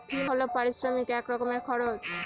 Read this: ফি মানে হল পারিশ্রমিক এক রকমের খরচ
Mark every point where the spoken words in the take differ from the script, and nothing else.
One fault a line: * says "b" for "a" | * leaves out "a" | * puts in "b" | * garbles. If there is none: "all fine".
* leaves out "মানে"